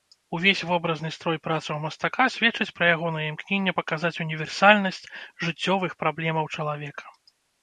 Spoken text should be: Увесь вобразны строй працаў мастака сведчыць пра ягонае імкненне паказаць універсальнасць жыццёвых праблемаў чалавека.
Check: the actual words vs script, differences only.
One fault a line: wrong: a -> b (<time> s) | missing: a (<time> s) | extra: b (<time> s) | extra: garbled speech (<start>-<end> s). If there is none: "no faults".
no faults